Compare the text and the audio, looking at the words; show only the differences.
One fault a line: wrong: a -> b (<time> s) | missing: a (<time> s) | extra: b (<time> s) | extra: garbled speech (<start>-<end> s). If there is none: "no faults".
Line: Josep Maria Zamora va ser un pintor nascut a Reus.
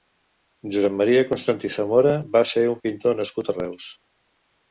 extra: Constantí (1.3 s)